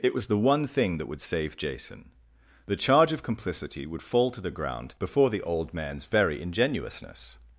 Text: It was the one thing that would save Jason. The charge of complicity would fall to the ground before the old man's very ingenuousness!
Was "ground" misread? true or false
false